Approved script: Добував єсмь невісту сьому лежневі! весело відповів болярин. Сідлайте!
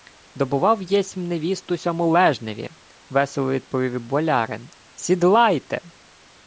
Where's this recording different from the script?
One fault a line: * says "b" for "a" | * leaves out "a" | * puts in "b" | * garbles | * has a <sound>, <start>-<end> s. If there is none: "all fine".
all fine